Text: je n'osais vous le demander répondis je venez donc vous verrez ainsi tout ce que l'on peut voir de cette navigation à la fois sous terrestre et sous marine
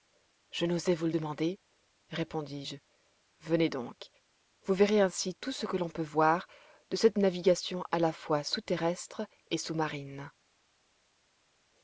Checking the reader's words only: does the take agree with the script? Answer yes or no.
yes